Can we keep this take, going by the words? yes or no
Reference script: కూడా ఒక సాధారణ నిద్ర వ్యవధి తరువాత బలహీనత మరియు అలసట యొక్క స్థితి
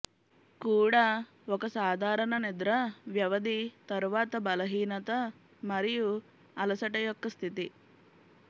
yes